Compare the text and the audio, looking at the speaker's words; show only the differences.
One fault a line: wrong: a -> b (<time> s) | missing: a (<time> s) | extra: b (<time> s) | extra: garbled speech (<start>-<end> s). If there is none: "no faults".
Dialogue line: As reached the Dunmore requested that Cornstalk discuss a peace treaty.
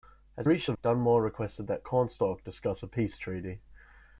no faults